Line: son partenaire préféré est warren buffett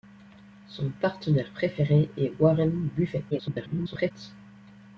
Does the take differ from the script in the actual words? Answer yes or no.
yes